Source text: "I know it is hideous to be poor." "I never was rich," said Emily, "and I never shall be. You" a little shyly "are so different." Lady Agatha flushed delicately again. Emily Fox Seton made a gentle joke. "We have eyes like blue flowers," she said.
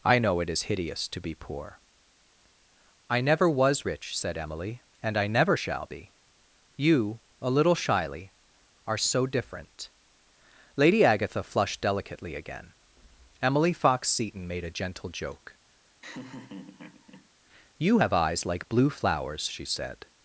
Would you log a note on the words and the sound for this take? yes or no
yes